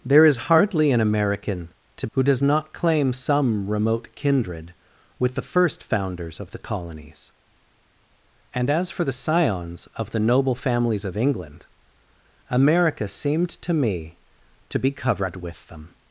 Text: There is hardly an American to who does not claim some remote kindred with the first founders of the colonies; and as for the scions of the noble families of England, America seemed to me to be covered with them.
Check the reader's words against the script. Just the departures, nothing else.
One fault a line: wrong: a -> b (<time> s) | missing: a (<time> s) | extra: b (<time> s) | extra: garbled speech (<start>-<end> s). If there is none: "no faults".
no faults